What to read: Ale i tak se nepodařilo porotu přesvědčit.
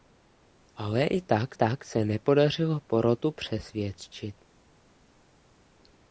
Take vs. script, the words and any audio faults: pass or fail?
fail